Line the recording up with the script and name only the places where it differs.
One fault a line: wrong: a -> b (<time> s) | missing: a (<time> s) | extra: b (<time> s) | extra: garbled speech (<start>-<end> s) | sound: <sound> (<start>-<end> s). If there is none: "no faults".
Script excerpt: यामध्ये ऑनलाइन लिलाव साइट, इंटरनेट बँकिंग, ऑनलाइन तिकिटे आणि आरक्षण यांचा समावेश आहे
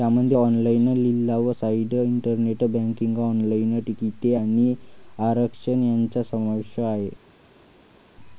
no faults